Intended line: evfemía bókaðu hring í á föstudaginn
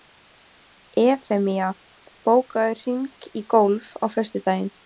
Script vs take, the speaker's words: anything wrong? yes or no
yes